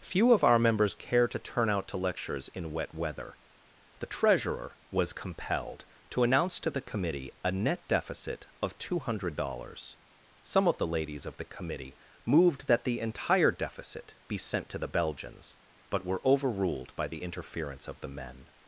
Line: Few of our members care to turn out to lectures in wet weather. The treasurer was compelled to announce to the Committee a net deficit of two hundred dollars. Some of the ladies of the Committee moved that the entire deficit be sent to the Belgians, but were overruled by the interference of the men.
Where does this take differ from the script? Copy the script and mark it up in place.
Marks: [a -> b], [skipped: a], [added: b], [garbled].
Few of our members care to turn out to lectures in wet weather. The treasurer was compelled to announce to the Committee a net deficit of two hundred dollars. Some of the ladies of the Committee moved that the entire deficit be sent to the Belgians, but were overruled by the interference of the men.